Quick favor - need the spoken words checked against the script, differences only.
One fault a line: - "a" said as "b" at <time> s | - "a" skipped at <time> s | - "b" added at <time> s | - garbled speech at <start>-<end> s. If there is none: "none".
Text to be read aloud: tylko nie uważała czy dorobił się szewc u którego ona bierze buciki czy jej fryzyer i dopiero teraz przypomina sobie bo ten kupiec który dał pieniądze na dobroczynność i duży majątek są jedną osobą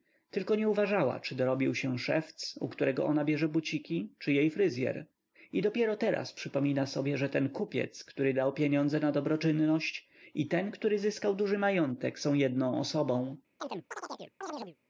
- "bo" said as "że" at 7.2 s
- "ten który zyskał" added at 10.5 s